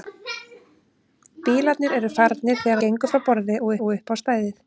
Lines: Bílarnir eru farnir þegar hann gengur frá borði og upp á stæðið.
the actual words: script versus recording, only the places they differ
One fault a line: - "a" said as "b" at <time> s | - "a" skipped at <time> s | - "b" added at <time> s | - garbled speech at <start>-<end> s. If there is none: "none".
- "hann" skipped at 2.8 s
- "og" added at 3.8 s